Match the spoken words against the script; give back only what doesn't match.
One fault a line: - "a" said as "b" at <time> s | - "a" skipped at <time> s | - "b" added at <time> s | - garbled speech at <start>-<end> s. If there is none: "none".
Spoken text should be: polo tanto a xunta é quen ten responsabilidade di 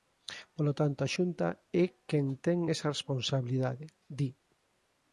- "esa" added at 2.7 s